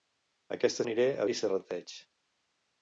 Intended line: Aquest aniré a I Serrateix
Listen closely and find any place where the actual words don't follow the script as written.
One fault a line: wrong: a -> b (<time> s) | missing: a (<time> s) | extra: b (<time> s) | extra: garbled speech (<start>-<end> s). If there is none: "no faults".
no faults